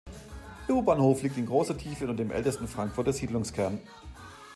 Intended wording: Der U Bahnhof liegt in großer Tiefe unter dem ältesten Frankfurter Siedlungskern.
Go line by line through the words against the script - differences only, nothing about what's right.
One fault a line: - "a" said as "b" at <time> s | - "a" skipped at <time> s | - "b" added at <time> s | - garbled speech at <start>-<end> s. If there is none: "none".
none